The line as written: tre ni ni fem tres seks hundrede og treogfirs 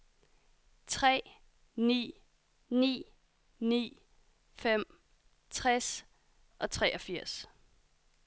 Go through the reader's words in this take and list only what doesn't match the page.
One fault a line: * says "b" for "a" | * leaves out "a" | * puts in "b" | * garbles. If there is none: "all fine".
* puts in "ni"
* leaves out "seks hundrede"